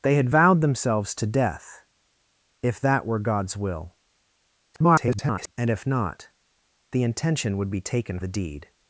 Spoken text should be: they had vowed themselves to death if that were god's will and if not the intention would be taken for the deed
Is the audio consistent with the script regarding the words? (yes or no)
no